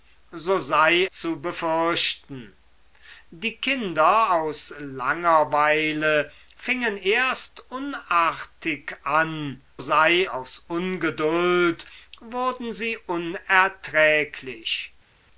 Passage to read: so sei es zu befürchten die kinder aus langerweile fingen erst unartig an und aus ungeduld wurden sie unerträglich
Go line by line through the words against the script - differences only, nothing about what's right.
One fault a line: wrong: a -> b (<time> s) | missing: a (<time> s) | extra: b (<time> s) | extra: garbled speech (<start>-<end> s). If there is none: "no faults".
missing: es (1.1 s)
wrong: und -> sei (9.8 s)